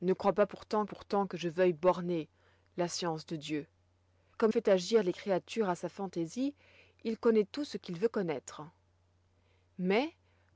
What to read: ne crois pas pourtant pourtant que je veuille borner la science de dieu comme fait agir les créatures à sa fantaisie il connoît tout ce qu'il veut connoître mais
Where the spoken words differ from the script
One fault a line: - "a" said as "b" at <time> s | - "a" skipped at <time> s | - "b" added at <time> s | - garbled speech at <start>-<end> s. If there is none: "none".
none